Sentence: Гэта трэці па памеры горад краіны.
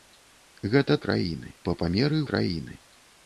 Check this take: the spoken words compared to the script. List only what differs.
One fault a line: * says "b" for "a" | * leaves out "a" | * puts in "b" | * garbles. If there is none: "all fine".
* says "краіны" for "трэці"
* leaves out "горад"